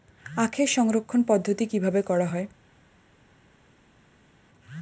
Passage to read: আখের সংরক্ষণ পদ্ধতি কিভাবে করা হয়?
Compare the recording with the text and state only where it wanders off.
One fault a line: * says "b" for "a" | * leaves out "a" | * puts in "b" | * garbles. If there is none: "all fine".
all fine